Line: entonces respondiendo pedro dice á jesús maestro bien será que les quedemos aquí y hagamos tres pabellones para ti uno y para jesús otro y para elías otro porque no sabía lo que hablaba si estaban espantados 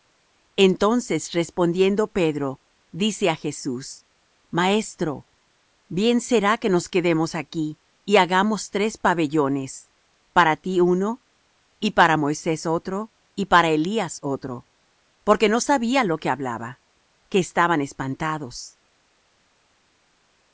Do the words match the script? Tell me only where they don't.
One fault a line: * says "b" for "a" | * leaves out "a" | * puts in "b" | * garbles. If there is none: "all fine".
* says "nos" for "les"
* says "moisés" for "jesús"
* says "que" for "si"